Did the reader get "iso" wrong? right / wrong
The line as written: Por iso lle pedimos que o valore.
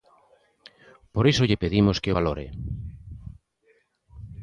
right